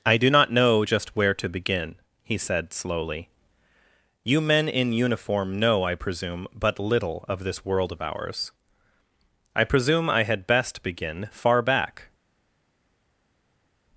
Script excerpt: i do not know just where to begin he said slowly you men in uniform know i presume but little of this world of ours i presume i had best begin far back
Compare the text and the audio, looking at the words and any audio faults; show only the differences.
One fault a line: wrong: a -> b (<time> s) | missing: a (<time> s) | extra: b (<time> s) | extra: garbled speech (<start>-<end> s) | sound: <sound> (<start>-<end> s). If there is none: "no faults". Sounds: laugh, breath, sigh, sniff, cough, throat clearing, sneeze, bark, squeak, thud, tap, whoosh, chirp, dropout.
no faults